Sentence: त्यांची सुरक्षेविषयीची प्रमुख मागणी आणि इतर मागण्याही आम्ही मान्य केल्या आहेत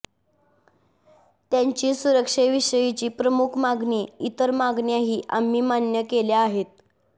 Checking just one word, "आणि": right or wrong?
wrong